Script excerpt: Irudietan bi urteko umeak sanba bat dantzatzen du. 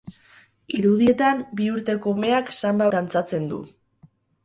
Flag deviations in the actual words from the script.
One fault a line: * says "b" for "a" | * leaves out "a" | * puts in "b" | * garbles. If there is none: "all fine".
* leaves out "bat"